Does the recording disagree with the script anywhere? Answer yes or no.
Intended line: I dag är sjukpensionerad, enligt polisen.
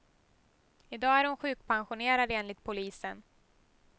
yes